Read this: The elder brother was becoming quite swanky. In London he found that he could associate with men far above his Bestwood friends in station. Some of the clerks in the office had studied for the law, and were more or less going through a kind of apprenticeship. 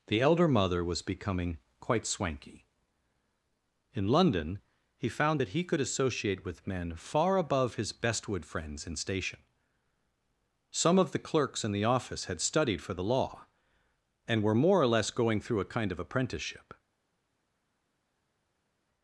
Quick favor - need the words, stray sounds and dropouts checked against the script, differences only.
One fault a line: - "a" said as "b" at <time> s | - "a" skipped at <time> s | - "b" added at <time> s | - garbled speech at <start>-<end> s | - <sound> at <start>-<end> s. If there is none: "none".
- "brother" said as "mother" at 0.5 s